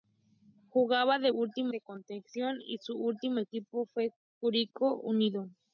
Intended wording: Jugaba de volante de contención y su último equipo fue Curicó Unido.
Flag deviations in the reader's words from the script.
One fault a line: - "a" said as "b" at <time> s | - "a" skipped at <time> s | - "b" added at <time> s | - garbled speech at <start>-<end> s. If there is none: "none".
- "volante" said as "último" at 1.3 s